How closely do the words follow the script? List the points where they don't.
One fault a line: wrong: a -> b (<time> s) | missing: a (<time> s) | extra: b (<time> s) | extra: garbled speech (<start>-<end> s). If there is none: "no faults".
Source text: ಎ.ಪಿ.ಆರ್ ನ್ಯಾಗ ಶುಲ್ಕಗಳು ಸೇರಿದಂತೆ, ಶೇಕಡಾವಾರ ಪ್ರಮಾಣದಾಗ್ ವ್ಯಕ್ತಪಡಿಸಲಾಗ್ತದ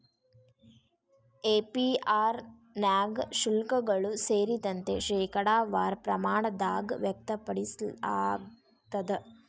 no faults